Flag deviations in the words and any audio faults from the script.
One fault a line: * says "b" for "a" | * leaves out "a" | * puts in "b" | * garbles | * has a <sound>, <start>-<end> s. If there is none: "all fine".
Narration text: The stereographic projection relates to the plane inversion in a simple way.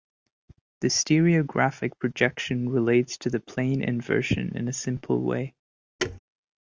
* has a thud, 6.0-6.2 s